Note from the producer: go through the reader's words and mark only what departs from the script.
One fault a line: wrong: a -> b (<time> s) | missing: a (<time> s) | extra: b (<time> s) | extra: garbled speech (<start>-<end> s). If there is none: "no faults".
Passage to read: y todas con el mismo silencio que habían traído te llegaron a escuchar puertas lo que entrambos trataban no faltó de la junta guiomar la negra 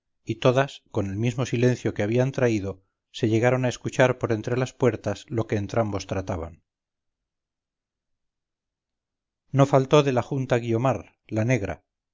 wrong: te -> se (3.1 s)
extra: por entre las (4.2 s)